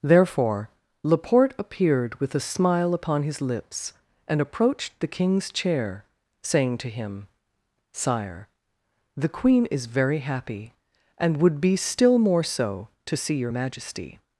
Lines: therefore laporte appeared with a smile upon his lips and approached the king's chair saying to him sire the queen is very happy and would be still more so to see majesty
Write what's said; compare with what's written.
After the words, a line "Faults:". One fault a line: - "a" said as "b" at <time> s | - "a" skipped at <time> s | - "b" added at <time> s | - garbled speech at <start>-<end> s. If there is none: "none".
therefore laporte appeared with a smile upon his lips and approached the king's chair saying to him sire the queen is very happy and would be still more so to see your majesty
Faults:
- "your" added at 13.4 s